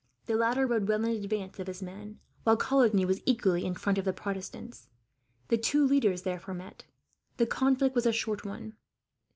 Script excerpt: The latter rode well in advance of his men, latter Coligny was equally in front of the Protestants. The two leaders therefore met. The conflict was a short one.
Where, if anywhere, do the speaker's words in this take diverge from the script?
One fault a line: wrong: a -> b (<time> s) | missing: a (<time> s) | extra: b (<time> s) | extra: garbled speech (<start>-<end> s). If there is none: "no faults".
wrong: latter -> while (2.4 s)